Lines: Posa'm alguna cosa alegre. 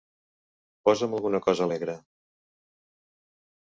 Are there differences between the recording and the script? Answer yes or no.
no